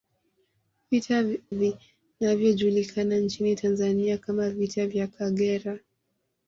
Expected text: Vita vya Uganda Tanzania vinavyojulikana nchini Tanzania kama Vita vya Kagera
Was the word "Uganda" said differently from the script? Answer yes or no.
yes